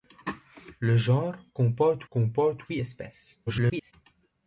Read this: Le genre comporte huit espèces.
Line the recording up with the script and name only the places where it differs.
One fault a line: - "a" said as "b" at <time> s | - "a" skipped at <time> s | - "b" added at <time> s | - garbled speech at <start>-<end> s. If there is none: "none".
- "comporte" added at 2.1 s
- garbled speech at 3.5-3.9 s